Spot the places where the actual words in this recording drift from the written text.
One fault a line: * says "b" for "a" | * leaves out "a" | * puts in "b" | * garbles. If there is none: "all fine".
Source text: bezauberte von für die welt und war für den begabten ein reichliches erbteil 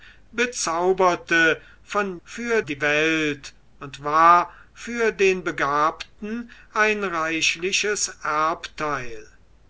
all fine